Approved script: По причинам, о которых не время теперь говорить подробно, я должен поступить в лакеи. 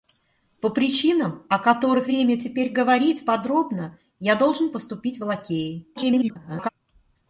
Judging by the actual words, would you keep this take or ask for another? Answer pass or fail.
fail